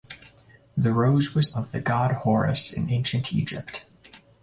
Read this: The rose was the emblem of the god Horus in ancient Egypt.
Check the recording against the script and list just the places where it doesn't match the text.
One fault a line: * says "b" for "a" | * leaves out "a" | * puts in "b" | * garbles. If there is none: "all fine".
* leaves out "the emblem"